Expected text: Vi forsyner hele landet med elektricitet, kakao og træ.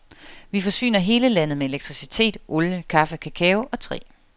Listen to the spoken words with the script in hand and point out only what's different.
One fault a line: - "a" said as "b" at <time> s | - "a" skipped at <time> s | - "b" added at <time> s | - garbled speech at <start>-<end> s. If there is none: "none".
- "olie kaffe" added at 2.5 s